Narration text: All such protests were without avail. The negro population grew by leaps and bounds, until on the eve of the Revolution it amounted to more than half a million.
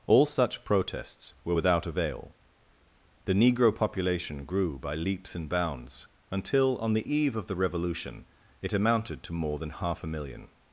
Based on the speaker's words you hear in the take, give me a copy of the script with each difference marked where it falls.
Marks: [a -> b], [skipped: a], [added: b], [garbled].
All such protests were without avail. The negro population grew by leaps and bounds, until on the eve of the Revolution it amounted to more than half a million.